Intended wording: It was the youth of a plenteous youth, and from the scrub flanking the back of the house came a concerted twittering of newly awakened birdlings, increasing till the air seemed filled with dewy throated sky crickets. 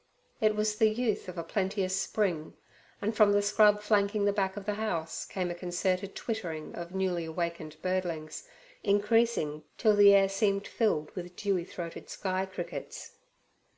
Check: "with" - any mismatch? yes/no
no